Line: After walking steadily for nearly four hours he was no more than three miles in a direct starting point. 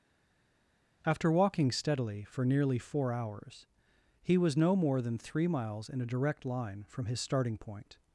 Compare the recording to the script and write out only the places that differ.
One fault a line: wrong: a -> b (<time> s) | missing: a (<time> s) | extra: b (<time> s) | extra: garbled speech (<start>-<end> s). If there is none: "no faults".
extra: line from his (6.4 s)